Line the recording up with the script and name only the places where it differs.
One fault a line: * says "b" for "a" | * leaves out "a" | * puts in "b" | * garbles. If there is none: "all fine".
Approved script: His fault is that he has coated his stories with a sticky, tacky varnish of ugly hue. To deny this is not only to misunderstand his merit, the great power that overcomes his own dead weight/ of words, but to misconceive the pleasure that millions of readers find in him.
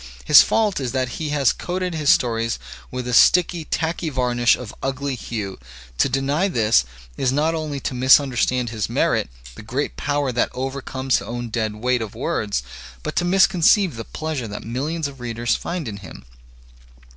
* leaves out "his"